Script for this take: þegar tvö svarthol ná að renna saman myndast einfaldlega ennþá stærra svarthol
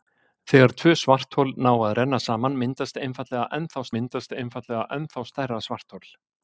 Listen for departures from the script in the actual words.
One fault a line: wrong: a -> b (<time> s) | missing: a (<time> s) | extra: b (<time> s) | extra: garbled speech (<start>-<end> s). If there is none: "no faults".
extra: myndast einfaldlega ennþá (4.0 s)